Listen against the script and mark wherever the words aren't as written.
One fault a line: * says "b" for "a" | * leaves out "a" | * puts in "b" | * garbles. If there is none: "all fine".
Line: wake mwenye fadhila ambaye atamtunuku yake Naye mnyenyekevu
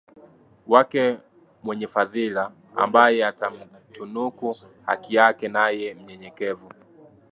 * puts in "haki"